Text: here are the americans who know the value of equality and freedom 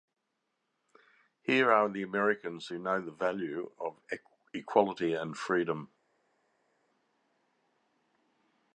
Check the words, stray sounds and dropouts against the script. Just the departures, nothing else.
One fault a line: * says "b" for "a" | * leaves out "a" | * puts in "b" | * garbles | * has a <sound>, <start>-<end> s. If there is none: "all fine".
all fine